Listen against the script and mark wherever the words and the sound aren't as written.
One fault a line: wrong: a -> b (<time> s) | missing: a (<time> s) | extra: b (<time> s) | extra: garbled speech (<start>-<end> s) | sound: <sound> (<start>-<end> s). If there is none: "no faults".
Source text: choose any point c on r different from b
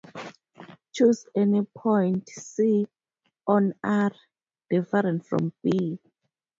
no faults